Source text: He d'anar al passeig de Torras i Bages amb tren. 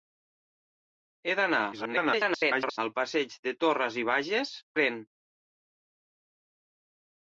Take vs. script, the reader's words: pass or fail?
fail